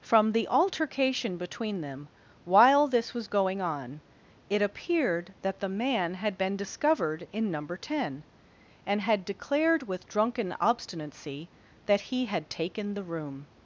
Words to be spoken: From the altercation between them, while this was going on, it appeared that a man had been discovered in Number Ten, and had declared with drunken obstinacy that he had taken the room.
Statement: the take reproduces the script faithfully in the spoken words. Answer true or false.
false